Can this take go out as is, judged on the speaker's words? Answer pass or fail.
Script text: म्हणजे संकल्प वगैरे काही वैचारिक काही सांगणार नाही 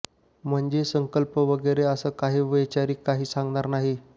fail